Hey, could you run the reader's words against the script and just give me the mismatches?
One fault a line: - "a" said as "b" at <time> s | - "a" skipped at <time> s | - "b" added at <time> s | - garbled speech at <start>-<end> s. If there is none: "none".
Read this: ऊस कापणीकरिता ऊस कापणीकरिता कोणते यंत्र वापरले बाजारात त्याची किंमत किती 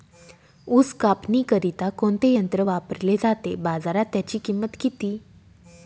- "ऊस कापणीकरिता" skipped at 1.9 s
- "जाते" added at 3.2 s